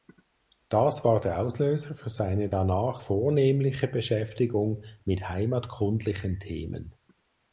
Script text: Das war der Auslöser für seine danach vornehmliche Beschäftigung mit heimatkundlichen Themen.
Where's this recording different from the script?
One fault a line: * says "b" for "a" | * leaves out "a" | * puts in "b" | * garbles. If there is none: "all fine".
all fine